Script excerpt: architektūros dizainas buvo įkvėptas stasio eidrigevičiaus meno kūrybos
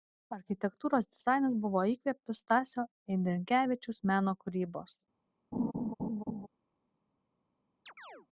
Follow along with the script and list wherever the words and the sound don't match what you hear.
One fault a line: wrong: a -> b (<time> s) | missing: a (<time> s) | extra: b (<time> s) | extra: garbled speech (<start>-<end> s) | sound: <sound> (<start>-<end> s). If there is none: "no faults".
sound: laugh (5.5-6.5 s)
sound: chirp (7.9-8.3 s)